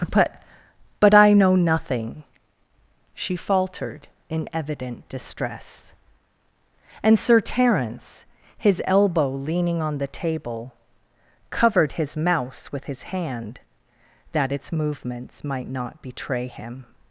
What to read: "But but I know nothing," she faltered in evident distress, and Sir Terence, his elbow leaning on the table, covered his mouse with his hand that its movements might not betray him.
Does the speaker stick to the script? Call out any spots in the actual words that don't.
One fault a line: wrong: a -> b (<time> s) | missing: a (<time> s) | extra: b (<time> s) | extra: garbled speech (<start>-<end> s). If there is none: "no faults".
no faults